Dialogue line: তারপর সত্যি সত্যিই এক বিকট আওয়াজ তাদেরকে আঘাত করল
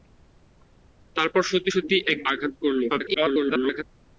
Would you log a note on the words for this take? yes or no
yes